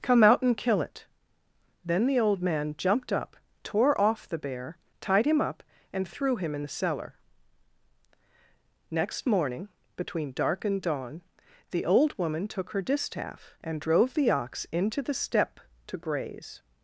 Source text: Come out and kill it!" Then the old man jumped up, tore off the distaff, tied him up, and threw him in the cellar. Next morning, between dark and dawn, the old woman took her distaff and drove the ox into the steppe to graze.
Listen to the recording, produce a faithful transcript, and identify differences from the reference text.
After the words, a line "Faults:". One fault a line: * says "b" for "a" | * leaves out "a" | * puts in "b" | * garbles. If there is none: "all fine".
Come out and kill it!" Then the old man jumped up, tore off the bear, tied him up, and threw him in the cellar. Next morning, between dark and dawn, the old woman took her distaff and drove the ox into the steppe to graze.
Faults:
* says "bear" for "distaff"